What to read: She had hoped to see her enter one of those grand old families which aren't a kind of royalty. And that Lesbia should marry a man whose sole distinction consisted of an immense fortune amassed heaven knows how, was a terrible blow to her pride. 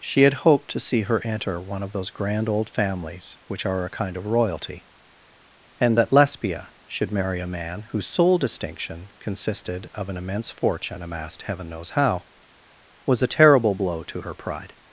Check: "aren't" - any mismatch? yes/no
yes